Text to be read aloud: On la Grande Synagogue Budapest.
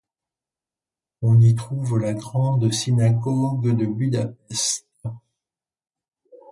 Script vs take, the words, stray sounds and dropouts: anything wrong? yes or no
yes